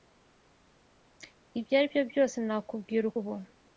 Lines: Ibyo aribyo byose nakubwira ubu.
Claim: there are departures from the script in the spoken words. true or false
false